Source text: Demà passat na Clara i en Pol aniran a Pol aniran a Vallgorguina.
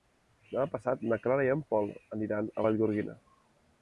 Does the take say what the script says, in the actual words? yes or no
no